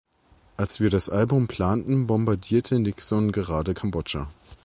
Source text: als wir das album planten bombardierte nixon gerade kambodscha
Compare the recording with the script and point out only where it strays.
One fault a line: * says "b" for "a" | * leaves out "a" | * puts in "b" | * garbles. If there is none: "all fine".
all fine